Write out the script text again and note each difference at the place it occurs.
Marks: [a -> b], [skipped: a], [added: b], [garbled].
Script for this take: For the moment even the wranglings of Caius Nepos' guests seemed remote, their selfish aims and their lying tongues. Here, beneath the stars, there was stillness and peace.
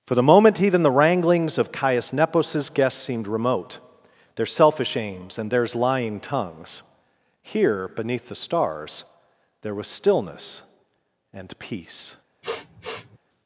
For the moment even the wranglings of Caius Nepos' guests seemed remote, their selfish aims and [their -> theirs] lying tongues. Here, beneath the stars, there was stillness and peace.